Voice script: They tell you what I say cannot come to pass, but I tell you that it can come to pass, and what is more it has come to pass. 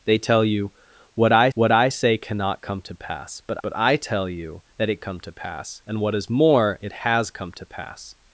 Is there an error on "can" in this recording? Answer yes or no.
yes